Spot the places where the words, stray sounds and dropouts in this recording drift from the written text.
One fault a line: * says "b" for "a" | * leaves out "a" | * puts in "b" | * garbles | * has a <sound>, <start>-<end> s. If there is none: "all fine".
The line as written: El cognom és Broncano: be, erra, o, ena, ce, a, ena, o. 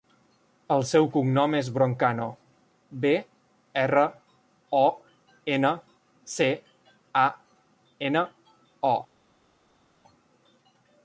* puts in "seu"